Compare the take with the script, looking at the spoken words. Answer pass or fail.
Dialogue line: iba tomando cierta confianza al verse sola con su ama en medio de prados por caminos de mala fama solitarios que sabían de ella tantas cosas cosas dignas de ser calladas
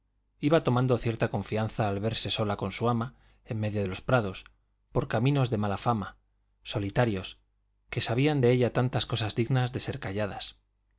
fail